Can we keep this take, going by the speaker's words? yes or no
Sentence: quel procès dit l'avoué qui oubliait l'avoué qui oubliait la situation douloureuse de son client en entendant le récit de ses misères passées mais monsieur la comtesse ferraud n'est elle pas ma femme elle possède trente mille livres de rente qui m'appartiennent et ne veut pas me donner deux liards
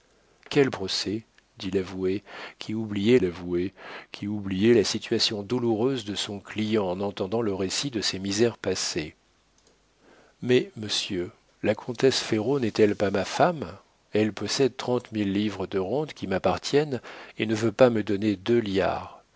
yes